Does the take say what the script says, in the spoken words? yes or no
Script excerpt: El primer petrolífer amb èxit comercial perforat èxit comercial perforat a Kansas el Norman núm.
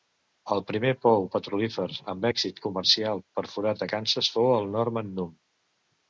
no